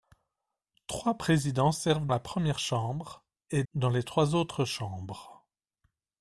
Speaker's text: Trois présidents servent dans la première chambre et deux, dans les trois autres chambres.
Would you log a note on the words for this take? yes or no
yes